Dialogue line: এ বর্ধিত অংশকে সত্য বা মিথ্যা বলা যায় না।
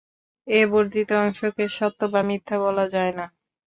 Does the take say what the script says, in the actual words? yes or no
yes